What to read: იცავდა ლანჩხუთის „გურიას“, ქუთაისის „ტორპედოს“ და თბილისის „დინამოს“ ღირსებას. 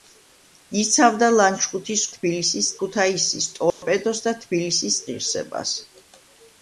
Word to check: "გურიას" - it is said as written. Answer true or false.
false